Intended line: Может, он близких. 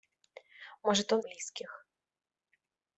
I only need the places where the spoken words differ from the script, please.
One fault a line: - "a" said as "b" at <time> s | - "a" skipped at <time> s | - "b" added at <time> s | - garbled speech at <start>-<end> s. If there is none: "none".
none